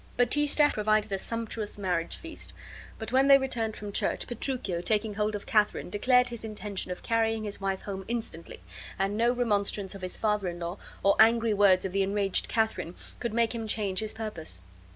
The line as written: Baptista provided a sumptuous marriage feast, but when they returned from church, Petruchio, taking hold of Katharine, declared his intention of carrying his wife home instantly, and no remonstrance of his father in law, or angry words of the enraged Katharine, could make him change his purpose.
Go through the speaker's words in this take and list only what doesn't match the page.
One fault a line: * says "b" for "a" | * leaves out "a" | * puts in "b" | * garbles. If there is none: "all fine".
all fine